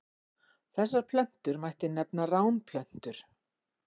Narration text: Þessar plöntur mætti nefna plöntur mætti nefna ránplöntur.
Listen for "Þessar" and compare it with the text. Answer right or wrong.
right